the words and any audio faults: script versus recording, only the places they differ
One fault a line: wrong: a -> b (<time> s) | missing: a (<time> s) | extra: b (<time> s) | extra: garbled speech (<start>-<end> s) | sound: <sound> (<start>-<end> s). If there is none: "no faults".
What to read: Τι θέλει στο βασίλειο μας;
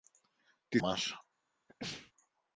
missing: θέλει στο βασίλειο (0.8 s)
sound: sneeze (1.7-2.1 s)